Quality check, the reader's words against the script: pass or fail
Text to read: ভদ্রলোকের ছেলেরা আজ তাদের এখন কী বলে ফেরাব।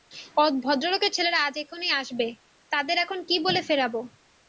fail